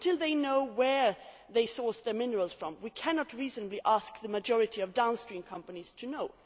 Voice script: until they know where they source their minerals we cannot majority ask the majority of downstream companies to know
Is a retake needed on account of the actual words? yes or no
yes